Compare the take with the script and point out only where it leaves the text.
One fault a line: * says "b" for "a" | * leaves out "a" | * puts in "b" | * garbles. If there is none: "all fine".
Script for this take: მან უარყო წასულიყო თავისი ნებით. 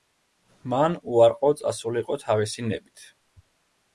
all fine